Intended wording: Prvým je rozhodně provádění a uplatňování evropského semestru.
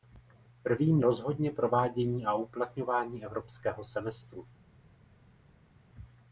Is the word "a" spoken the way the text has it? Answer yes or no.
yes